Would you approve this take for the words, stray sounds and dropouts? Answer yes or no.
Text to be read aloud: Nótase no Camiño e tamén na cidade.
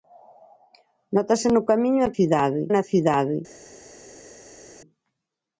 no